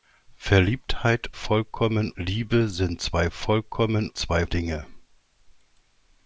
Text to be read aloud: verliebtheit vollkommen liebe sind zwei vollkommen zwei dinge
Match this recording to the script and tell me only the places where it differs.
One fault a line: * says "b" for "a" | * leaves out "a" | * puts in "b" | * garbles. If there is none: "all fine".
all fine